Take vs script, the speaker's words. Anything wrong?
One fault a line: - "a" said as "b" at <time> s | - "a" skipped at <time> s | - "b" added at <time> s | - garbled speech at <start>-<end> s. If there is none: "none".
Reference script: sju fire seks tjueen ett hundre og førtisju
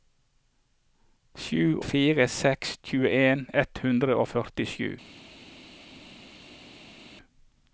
none